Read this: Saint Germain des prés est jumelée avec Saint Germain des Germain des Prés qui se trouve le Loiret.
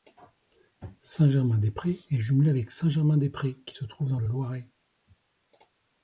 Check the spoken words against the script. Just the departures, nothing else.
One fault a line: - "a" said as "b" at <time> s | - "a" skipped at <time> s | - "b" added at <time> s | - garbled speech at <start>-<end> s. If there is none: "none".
- "Germain des" skipped at 3.3 s
- "dans" added at 4.1 s